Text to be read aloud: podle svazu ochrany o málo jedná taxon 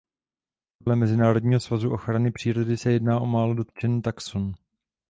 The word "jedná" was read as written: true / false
false